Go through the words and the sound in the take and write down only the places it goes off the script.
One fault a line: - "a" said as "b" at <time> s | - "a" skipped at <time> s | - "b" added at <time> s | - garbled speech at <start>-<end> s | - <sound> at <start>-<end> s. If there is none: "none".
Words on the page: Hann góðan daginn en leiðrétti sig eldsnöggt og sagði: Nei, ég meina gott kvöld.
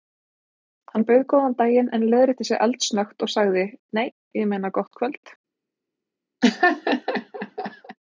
- "bauð" added at 1.1 s
- laugh at 6.4-8.0 s